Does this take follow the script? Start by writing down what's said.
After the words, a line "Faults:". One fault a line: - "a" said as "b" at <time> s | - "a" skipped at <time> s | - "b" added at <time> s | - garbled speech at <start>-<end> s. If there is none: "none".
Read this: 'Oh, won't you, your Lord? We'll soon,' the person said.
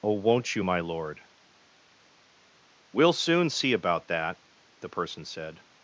'Oh, won't you, my Lord? We'll soon see about that,' the person said.
Faults:
- "your" said as "my" at 0.6 s
- "see about that" added at 3.5 s